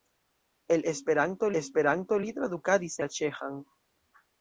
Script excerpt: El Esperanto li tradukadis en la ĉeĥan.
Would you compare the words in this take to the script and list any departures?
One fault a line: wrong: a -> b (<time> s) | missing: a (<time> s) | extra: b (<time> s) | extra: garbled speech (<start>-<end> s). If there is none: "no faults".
extra: Esperanto (1.6 s)
missing: en (3.0 s)